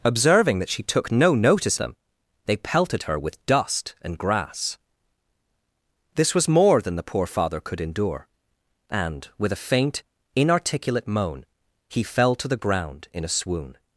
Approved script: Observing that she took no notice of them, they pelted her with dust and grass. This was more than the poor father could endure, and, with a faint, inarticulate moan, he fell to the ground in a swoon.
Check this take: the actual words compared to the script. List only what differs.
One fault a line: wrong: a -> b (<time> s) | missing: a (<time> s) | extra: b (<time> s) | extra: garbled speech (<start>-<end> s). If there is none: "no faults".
missing: of (1.8 s)